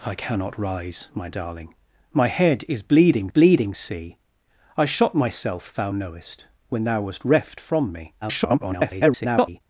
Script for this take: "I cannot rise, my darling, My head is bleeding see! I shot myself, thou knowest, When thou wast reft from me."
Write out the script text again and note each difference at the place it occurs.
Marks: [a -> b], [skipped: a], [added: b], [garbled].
"I cannot rise, my darling, My head is bleeding [added: bleeding] see! I shot myself, thou knowest, When thou wast reft from me." [garbled]